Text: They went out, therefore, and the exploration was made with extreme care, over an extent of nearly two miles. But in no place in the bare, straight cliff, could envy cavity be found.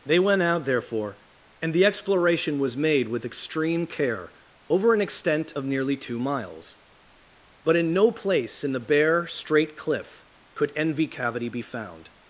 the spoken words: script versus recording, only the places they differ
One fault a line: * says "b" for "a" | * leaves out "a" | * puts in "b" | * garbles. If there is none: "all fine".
all fine